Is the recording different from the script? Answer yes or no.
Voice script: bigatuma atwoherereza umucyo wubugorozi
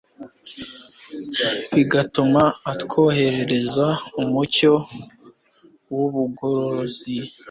no